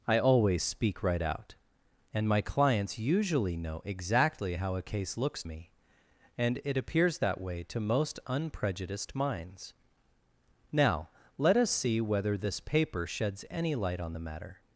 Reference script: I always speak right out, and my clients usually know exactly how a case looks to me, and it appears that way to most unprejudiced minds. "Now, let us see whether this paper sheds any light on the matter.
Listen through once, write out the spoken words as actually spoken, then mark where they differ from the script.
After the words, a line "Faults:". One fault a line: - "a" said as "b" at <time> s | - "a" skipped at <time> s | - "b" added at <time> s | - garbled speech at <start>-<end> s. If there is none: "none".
I always speak right out, and my clients usually know exactly how a case looks me, and it appears that way to most unprejudiced minds. "Now, let us see whether this paper sheds any light on the matter.
Faults:
- "to" skipped at 5.4 s